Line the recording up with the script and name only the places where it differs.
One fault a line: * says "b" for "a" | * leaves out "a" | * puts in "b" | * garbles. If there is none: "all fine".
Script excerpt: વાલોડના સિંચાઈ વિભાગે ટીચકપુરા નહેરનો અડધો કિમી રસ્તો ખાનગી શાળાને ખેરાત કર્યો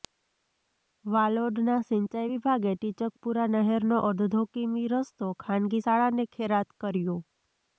all fine